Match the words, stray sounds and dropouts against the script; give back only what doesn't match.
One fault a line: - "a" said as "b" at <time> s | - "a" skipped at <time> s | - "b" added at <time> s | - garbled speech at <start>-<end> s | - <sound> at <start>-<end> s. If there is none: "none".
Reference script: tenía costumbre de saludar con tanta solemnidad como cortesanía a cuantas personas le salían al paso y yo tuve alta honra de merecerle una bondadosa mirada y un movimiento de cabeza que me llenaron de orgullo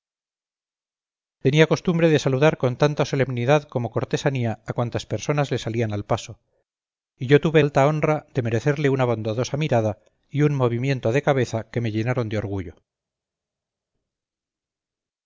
none